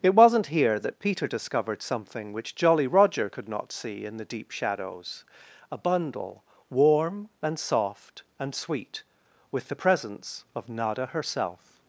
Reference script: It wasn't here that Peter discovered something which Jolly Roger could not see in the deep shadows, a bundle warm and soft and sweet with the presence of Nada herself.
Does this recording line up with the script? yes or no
yes